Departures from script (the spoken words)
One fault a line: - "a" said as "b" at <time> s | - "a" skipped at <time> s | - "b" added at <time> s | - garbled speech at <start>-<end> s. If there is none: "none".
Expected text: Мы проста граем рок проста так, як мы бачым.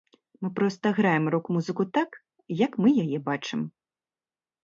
- "проста" said as "музыку" at 1.6 s
- "яе" added at 3.1 s